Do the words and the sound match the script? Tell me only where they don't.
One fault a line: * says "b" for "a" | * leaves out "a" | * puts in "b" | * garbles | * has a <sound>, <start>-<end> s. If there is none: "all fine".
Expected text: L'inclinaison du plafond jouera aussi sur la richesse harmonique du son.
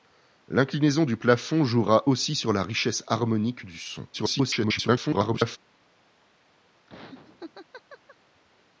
* garbles
* has a laugh, 6.9-8.2 s